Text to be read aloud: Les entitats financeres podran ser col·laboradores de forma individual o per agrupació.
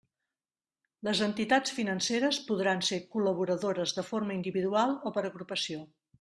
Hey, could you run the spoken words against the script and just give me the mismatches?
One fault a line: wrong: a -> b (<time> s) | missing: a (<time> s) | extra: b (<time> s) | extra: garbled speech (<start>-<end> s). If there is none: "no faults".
no faults